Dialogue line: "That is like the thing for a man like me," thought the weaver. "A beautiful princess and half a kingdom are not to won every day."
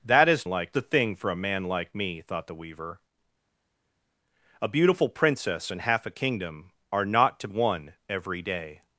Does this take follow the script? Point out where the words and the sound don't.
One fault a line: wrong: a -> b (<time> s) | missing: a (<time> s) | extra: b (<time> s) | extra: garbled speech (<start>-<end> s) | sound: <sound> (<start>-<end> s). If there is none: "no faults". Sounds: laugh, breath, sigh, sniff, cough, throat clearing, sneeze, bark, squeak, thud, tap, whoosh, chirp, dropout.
no faults